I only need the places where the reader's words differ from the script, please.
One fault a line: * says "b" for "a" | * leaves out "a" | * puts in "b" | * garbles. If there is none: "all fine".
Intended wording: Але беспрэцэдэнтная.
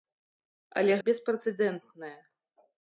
all fine